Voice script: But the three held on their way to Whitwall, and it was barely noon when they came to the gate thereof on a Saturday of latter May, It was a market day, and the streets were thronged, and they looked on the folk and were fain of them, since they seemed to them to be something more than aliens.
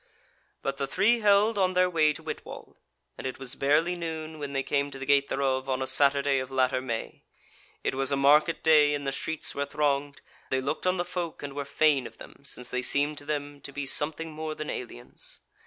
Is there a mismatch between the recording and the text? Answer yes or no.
yes